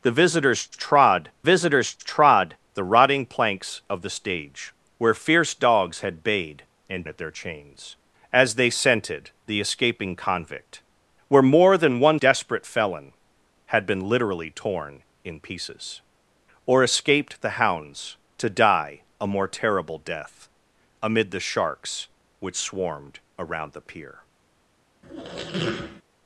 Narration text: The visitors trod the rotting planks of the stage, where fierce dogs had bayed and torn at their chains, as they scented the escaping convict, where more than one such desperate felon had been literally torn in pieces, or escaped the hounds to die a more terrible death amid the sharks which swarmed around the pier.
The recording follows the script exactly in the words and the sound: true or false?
false